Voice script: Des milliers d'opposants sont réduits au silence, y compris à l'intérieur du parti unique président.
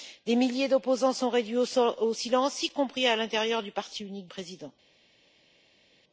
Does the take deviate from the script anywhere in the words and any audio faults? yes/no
no